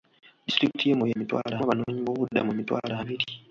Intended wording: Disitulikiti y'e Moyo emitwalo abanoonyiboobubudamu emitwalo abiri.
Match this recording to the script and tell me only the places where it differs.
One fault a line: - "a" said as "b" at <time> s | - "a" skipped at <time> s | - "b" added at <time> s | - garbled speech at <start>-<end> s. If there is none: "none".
none